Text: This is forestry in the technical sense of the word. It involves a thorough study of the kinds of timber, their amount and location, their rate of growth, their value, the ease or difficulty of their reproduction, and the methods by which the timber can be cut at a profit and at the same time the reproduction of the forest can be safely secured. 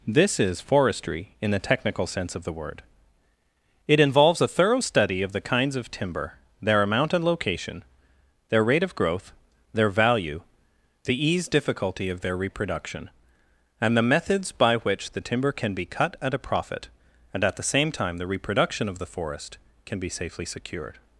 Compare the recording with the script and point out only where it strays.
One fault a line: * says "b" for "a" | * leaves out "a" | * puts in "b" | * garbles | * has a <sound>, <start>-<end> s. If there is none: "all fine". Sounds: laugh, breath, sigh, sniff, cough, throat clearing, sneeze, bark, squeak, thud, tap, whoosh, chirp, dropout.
* leaves out "or"